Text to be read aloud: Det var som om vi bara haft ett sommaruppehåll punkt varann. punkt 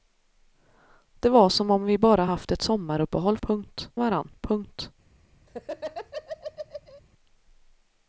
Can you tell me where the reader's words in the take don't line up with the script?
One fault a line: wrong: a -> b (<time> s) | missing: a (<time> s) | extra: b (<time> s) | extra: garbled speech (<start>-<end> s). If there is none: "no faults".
no faults